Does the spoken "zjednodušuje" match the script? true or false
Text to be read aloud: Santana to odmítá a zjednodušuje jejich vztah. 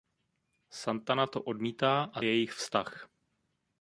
false